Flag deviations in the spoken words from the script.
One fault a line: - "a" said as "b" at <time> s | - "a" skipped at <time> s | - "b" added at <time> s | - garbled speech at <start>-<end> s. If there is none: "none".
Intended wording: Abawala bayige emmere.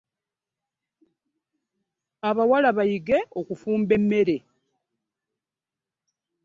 - "okufumba" added at 3.4 s